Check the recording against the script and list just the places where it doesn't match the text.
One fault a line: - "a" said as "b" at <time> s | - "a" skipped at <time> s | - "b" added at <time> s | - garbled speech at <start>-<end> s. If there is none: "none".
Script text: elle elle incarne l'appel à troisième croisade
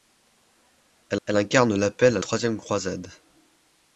none